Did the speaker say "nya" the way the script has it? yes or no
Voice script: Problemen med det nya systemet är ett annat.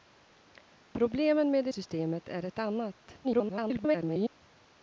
no